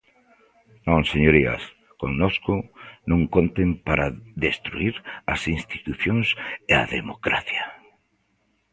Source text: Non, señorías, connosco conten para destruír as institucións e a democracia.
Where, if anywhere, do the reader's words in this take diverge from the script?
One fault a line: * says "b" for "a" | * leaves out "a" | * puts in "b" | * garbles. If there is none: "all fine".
* puts in "non"